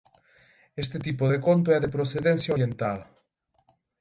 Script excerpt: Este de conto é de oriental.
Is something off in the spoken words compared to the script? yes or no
yes